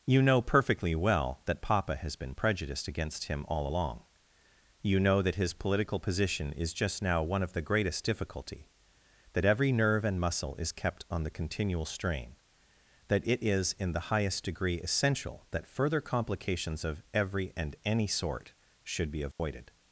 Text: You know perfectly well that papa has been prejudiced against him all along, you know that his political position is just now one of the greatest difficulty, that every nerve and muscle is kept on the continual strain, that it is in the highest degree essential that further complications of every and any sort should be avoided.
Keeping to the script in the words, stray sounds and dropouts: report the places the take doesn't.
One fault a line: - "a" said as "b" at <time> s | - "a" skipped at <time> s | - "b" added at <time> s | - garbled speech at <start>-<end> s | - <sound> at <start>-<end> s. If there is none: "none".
- dropout at 19.3-19.4 s